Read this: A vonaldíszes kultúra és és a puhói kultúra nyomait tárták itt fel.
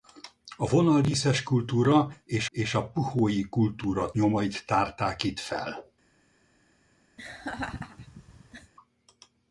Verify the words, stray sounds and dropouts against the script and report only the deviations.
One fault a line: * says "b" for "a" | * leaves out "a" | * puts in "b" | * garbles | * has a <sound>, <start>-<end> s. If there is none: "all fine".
* has a laugh, 7.2-8.7 s